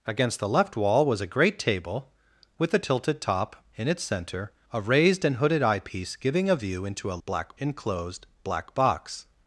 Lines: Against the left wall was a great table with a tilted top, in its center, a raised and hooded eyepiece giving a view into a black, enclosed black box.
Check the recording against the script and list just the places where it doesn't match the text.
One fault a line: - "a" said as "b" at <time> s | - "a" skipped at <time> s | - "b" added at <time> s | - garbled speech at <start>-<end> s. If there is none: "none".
none